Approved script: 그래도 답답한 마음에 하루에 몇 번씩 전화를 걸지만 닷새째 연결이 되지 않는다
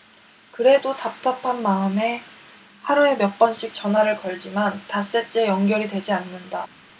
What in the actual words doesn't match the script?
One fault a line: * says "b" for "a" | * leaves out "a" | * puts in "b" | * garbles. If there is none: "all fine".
all fine